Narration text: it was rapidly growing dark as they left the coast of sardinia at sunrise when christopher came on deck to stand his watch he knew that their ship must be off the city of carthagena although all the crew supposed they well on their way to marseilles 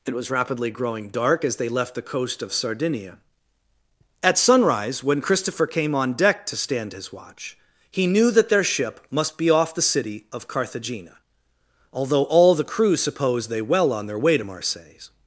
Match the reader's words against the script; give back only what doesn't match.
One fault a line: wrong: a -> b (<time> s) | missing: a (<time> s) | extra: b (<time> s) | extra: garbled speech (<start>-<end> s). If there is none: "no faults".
no faults